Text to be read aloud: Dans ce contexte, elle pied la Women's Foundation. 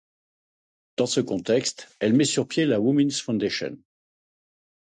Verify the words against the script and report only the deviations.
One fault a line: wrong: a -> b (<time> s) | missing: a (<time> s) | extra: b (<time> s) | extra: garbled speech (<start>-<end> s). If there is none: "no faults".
extra: met sur (2.1 s)